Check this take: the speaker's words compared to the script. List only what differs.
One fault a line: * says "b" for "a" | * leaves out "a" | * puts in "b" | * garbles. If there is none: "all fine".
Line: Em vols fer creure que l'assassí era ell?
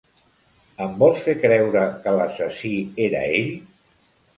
all fine